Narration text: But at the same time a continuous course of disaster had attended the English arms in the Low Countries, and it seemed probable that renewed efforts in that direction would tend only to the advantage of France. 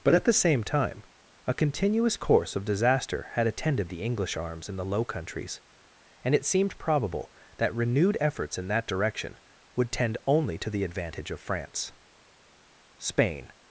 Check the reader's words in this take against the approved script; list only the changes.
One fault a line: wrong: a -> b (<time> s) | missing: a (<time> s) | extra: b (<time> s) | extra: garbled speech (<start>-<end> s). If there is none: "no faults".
extra: Spain (13.0 s)